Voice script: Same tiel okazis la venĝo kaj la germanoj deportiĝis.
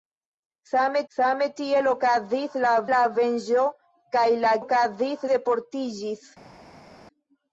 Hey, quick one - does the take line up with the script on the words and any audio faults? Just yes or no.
no